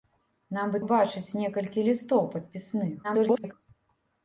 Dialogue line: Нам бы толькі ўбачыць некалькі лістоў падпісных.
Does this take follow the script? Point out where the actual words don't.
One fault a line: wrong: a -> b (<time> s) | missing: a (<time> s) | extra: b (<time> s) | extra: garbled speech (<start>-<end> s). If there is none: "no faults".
missing: толькі (0.8 s)
extra: garbled speech (3.0-3.5 s)